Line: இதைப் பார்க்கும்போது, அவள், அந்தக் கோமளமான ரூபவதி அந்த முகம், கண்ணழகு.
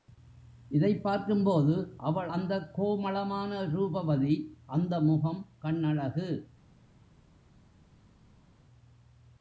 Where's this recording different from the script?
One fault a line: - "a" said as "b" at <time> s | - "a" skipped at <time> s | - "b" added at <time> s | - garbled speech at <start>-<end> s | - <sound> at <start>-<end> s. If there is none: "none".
none